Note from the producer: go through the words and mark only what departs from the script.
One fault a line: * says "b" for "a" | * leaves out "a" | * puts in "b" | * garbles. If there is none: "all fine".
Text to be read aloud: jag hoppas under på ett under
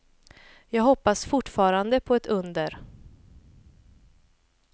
* says "fortfarande" for "under"